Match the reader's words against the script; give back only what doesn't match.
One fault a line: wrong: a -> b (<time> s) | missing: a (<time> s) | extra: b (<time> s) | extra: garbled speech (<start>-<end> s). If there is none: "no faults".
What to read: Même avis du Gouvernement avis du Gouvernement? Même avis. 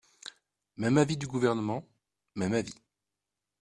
missing: avis du Gouvernement (1.8 s)